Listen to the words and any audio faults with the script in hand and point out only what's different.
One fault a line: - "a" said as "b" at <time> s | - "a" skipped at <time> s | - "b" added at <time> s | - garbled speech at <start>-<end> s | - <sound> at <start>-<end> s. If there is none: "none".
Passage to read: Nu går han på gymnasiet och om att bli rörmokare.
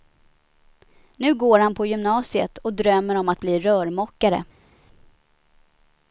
- "drömmer" added at 2.7 s